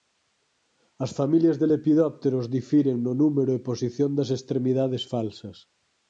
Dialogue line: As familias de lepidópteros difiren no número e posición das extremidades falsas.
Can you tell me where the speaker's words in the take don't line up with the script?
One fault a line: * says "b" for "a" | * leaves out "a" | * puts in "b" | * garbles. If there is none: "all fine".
all fine